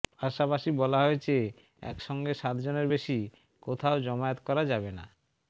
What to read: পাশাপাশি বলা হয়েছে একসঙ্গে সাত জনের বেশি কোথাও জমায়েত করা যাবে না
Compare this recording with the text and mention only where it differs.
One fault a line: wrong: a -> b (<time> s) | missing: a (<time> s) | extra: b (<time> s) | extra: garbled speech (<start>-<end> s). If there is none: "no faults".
no faults